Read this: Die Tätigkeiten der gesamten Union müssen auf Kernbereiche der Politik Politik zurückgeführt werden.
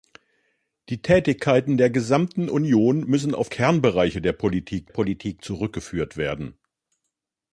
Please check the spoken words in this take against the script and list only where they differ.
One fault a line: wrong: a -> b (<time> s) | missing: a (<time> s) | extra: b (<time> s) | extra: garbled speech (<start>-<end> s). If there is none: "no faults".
no faults